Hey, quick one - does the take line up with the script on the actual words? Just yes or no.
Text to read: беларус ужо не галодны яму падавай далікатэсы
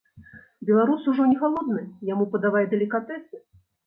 yes